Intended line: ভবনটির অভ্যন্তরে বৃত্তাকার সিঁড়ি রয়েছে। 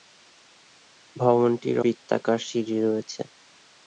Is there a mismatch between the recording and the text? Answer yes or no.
yes